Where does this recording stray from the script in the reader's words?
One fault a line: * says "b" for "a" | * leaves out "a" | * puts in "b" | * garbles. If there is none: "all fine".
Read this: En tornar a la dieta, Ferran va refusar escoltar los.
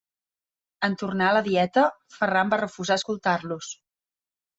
all fine